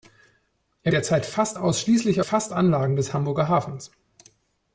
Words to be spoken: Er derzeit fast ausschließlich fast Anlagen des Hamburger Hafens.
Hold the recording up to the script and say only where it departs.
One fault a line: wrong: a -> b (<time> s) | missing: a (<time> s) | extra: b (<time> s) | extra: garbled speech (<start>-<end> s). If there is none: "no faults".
no faults